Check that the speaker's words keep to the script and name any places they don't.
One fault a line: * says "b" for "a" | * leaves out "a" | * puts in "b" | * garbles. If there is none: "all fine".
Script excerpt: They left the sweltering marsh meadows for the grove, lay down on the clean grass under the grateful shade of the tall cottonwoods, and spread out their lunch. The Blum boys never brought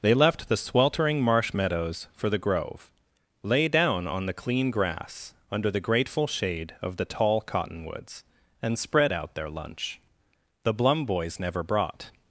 all fine